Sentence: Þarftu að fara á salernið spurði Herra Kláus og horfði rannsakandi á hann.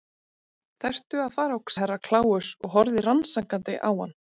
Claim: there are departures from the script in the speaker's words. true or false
true